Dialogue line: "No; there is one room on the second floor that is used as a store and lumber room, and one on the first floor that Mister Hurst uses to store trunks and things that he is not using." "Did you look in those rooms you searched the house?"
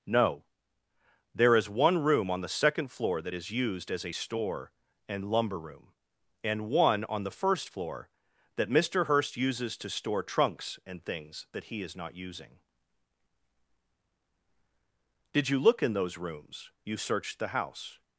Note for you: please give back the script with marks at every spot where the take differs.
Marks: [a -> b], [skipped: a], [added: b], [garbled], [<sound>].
"No; there is one room on the second floor that is used as a store and lumber room, and one on the first floor that Mister Hurst uses to store trunks and things that he is not using." "Did you look in those rooms you searched the house?"